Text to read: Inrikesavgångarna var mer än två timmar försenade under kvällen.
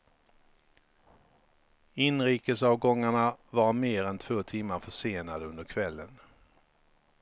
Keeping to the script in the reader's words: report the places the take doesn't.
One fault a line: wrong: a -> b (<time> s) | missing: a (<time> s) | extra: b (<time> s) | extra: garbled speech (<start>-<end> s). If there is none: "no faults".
no faults